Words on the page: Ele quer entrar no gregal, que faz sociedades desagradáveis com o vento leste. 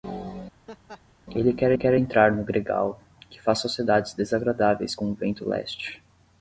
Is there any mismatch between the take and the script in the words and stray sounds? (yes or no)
yes